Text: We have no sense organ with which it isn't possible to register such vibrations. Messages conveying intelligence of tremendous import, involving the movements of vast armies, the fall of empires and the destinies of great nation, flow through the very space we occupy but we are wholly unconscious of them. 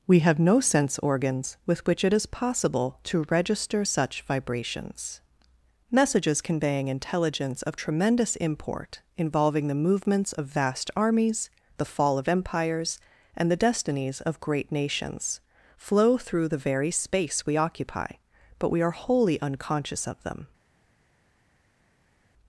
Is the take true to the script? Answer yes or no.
no